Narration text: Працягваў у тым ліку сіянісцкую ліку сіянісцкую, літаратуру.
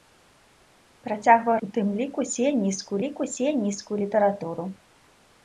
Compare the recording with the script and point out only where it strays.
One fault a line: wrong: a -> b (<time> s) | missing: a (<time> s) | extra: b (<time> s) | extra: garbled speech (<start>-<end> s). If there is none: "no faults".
no faults